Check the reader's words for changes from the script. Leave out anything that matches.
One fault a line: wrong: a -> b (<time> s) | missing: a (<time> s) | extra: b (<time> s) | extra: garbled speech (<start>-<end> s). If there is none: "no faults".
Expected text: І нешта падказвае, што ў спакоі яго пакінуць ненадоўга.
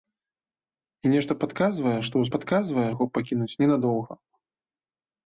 wrong: спакоі -> падказвае (2.3 s)